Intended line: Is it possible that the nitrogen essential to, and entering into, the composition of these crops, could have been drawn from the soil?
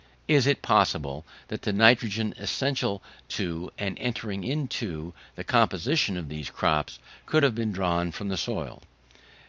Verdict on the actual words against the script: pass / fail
pass